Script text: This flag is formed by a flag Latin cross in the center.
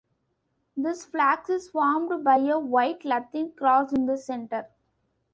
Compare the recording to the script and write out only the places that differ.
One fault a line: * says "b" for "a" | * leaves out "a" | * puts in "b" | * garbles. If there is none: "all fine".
* says "white" for "flag"